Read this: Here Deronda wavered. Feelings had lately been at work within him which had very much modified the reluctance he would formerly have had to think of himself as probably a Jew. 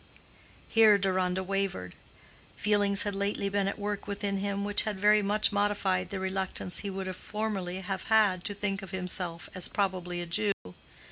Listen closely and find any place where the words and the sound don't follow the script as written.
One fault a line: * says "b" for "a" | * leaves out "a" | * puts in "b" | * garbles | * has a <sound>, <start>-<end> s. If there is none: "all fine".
* has a dropout, 10.5-10.7 s